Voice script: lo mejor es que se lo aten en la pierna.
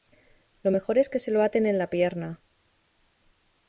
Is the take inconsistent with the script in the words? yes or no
no